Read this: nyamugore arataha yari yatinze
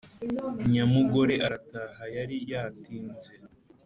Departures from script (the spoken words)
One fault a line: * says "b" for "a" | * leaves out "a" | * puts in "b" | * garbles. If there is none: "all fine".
all fine